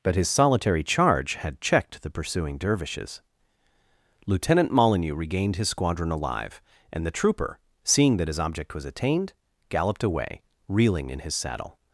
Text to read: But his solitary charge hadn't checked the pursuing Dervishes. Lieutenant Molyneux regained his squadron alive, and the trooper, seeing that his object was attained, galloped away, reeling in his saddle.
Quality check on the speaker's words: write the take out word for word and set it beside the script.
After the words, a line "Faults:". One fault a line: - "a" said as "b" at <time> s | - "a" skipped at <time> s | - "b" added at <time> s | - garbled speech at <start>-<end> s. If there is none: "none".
But his solitary charge had checked the pursuing Dervishes. Lieutenant Molyneux regained his squadron alive, and the trooper, seeing that his object was attained, galloped away, reeling in his saddle.
Faults:
- "hadn't" said as "had" at 1.4 s